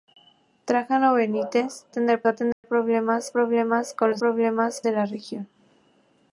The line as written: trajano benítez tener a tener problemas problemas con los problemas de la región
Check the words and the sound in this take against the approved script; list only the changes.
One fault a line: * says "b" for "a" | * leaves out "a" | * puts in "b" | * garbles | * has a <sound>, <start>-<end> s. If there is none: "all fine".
* has a dropout, 2.5-2.6 s